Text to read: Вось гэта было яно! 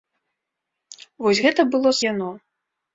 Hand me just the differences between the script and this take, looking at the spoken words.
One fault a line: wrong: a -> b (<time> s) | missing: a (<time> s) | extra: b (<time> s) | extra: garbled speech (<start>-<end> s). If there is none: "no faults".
no faults